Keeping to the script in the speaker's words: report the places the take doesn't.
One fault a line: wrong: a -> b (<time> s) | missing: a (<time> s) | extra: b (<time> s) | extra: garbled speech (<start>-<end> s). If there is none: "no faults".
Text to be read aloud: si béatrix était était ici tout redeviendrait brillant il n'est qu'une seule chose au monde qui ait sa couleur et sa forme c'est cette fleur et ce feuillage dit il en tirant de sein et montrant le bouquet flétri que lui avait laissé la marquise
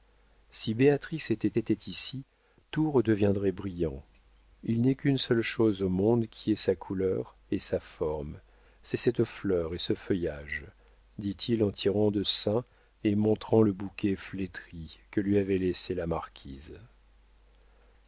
no faults